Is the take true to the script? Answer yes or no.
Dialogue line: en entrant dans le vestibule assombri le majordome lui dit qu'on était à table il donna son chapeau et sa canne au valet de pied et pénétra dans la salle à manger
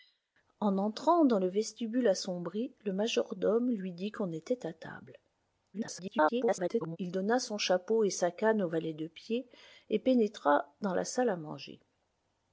no